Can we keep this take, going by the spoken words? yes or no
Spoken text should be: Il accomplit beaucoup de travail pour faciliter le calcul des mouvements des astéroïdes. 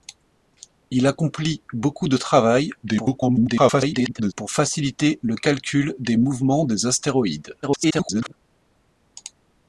no